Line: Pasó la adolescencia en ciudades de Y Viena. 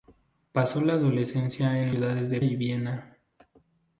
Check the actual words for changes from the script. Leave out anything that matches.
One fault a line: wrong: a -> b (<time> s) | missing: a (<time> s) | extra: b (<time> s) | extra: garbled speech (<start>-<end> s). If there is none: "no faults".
no faults